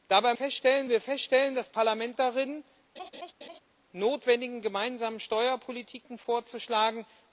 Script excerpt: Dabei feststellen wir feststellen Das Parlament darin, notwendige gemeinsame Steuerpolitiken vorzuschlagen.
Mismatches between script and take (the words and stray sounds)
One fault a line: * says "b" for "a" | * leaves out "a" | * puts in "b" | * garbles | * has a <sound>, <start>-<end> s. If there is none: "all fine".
* has a laugh, 3.0-3.6 s